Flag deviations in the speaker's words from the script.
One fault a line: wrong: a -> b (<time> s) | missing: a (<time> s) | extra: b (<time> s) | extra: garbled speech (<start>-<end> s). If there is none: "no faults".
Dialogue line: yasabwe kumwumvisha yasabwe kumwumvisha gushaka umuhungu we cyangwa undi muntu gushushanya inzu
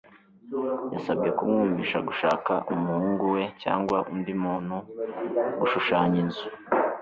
missing: yasabwe kumwumvisha (2.0 s)